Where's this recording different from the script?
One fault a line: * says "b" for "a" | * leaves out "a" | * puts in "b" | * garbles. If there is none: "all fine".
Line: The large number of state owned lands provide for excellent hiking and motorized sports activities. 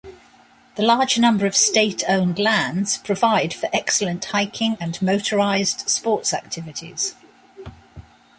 all fine